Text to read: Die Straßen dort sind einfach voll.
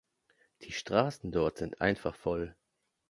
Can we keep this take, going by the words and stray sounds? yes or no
yes